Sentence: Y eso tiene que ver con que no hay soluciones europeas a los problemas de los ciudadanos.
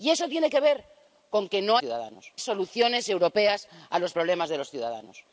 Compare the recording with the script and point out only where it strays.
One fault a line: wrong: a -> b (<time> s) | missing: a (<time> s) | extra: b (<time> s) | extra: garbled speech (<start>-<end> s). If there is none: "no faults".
wrong: hay -> ciudadanos (1.8 s)